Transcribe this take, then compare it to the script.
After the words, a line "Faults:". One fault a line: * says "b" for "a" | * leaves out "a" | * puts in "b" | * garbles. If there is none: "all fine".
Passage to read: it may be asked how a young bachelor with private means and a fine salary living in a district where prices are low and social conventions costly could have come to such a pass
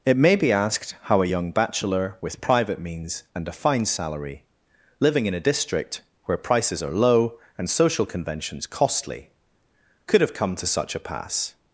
it may be asked how a young bachelor with private means and a fine salary living in a district where prices are low and social conventions costly could have come to such a pass
Faults:
all fine